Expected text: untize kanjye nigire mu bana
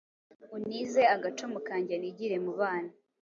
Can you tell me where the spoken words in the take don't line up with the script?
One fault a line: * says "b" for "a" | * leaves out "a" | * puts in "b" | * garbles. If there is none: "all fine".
* puts in "agacumu"